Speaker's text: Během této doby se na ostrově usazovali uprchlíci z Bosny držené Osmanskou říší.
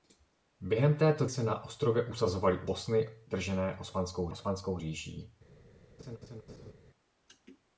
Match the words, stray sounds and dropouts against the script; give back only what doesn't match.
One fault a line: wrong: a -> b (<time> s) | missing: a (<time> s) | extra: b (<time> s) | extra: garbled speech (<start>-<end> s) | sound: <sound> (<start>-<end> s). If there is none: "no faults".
missing: doby (1.2 s)
missing: uprchlíci z (2.6 s)
extra: Osmanskou (4.3 s)
sound: laugh (6.0-6.7 s)